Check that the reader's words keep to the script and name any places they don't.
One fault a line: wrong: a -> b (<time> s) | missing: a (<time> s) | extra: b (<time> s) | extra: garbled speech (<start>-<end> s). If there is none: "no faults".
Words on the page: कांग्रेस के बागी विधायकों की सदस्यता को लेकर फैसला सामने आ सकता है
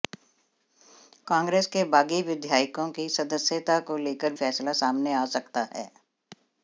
no faults